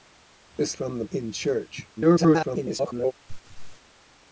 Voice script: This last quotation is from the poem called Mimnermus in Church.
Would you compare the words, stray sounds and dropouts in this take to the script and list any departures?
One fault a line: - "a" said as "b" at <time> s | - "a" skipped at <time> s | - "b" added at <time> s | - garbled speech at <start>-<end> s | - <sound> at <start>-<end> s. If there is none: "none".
- "last quotation is" skipped at 0.8 s
- "poem called Mimnermus" skipped at 1.1 s
- garbled speech at 2.0-3.1 s
- laugh at 3.3-3.8 s